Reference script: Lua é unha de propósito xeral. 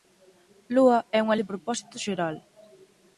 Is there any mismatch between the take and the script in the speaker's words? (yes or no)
no